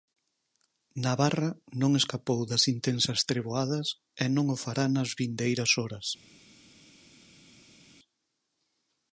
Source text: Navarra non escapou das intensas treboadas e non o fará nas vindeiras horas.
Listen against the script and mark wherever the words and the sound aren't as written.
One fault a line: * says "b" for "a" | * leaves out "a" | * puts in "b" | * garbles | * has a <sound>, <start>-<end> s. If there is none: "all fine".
all fine